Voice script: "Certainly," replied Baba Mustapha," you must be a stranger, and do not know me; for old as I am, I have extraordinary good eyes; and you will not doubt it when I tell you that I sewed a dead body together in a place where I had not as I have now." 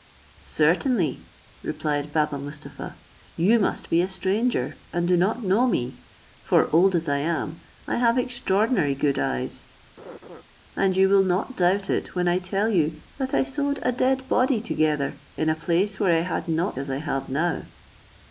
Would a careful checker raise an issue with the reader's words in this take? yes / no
no